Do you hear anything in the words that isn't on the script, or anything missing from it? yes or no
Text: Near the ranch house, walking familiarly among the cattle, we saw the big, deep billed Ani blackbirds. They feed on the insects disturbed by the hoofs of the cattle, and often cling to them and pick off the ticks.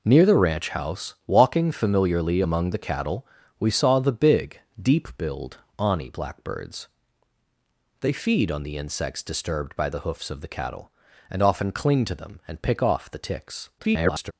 yes